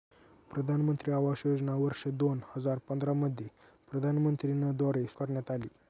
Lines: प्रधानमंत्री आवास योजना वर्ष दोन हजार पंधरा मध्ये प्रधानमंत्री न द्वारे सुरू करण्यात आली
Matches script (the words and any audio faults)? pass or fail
fail